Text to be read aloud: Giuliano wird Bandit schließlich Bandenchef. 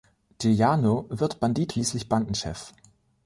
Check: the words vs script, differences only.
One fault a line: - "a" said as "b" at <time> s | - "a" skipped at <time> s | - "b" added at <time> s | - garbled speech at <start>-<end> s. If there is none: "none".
none